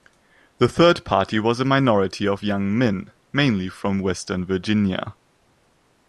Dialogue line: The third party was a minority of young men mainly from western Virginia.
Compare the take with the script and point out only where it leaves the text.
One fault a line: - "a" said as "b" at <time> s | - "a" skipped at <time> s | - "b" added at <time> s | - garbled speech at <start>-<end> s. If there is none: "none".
none